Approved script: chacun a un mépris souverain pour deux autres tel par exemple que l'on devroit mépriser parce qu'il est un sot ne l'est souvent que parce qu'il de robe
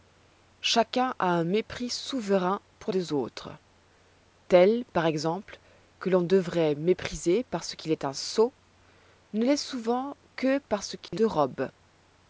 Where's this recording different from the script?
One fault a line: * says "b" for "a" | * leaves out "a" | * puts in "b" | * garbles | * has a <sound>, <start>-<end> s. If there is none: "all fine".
* has a dropout, 11.1-11.1 s